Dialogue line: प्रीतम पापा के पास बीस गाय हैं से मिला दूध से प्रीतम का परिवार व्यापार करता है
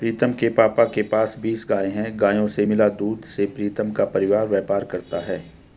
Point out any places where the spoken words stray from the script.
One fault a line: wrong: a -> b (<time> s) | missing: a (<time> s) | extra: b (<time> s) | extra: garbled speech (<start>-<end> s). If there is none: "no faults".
extra: के (0.3 s)
extra: गायों (2.2 s)